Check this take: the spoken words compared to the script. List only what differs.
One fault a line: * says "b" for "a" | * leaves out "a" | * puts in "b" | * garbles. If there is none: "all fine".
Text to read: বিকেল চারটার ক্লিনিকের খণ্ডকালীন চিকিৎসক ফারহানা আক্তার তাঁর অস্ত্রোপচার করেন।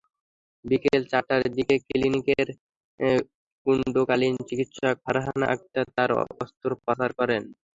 * puts in "দিকে"